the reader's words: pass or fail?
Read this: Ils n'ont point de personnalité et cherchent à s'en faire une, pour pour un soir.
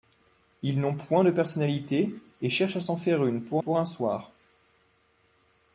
pass